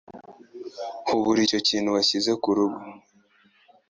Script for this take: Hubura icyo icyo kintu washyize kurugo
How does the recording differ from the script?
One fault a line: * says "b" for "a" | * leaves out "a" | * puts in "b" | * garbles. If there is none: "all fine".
* leaves out "icyo"